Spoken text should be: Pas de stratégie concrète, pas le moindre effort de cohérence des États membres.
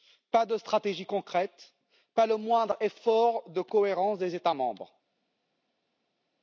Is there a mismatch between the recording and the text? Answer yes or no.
no